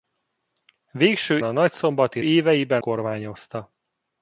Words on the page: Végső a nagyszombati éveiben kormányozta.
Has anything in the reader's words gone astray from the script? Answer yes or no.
no